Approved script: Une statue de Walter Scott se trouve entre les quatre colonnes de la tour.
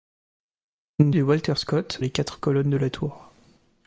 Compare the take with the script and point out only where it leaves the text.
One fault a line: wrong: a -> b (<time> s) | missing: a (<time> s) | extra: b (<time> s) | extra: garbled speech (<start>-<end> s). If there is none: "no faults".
missing: statue (1.1 s)
missing: se trouve entre (2.0 s)